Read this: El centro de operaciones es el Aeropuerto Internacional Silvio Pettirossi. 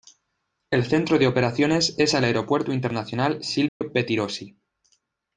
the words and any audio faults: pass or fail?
fail